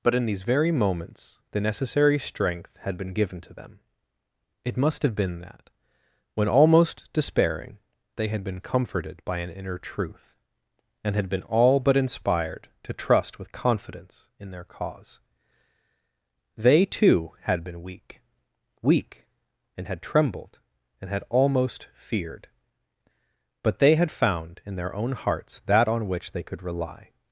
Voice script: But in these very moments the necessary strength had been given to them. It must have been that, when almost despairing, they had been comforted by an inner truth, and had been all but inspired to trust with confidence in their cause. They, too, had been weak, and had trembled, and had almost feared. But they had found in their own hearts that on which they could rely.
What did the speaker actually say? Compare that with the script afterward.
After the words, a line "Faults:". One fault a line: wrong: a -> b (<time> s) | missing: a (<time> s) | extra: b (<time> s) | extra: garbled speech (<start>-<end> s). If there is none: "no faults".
But in these very moments the necessary strength had been given to them. It must have been that, when almost despairing, they had been comforted by an inner truth, and had been all but inspired to trust with confidence in their cause. They, too, had been weak weak, and had trembled, and had almost feared. But they had found in their own hearts that on which they could rely.
Faults:
extra: weak (18.8 s)